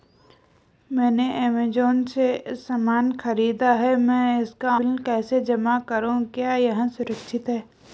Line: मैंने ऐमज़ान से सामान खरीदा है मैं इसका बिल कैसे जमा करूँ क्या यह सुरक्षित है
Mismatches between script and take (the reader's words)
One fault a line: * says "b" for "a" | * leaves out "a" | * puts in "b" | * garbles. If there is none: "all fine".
all fine